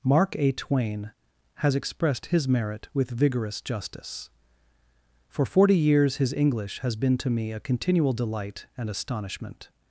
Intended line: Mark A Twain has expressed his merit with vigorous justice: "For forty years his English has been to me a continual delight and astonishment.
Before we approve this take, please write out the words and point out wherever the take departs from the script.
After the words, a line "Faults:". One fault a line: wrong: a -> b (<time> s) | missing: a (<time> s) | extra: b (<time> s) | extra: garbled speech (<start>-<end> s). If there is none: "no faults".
Mark A Twain has expressed his merit with vigorous justice: "For forty years his English has been to me a continual delight and astonishment.
Faults:
no faults